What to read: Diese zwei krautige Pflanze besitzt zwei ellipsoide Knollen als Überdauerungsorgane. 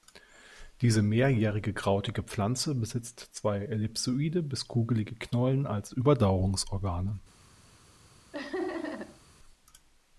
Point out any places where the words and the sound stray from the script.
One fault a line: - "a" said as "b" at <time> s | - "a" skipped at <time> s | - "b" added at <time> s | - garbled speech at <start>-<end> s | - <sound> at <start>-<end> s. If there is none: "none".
- "zwei" said as "mehrjährige" at 1.0 s
- "bis kugelige" added at 4.4 s
- laugh at 8.3-9.2 s